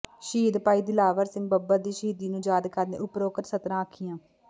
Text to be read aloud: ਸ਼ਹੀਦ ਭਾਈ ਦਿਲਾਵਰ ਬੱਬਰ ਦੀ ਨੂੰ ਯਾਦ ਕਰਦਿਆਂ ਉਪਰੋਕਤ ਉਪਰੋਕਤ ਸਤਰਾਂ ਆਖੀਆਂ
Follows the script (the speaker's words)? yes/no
no